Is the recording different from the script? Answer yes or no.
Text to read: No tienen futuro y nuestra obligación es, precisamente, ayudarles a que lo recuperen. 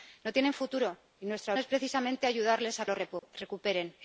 yes